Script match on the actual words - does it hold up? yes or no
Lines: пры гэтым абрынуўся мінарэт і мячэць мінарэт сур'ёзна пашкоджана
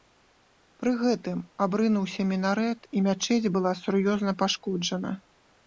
no